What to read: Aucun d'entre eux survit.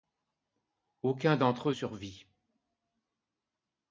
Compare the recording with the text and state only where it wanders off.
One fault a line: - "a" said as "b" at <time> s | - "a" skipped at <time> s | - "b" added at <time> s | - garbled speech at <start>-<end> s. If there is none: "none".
none